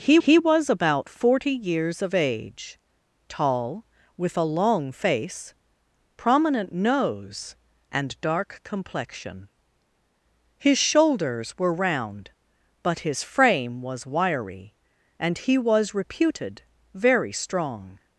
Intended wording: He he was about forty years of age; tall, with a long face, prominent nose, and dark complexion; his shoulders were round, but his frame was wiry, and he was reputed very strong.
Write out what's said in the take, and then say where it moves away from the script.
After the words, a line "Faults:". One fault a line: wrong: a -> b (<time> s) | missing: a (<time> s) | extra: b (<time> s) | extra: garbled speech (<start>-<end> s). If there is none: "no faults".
He he was about forty years of age; tall, with a long face, prominent nose, and dark complexion; his shoulders were round, but his frame was wiry, and he was reputed very strong.
Faults:
no faults